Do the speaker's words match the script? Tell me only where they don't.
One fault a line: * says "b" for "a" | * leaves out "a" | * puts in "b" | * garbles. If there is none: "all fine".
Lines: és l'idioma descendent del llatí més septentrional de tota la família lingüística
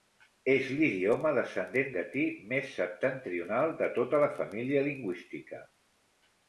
* leaves out "del"